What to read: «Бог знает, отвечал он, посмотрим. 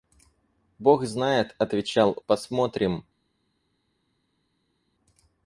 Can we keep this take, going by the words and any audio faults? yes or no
no